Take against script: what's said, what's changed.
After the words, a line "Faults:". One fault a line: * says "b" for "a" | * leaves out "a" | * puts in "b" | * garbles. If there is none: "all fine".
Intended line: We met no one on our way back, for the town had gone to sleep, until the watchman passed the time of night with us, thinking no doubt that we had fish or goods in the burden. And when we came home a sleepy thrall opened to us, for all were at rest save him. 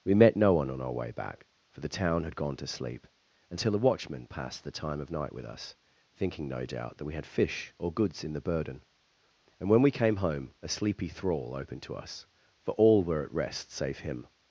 We met no one on our way back, for the town had gone to sleep, until a watchman passed the time of night with us, thinking no doubt that we had fish or goods in the burden. And when we came home a sleepy thrall opened to us, for all were at rest save him.
Faults:
* says "a" for "the"